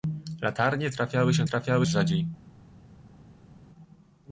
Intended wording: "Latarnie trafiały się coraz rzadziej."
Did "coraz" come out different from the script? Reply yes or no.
yes